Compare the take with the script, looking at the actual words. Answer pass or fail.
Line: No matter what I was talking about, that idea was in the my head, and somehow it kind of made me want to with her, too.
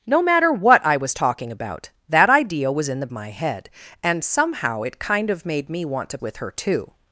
pass